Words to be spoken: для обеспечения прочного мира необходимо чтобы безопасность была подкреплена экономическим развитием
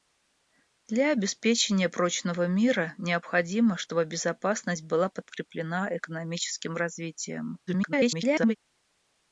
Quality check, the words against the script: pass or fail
fail